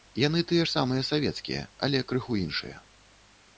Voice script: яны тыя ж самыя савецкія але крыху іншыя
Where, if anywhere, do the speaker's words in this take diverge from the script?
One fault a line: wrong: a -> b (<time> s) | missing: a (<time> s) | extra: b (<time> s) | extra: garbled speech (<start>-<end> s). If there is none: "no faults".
no faults